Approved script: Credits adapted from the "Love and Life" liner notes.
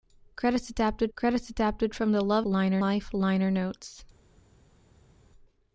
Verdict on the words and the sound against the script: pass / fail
fail